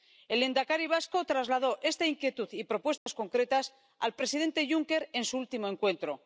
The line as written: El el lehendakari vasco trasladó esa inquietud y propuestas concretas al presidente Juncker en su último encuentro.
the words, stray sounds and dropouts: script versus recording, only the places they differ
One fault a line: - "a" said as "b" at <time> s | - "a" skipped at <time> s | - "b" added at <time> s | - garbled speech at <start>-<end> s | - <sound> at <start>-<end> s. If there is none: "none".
- "el" skipped at 0.4 s
- "esa" said as "esta" at 1.8 s
- dropout at 3.0-3.1 s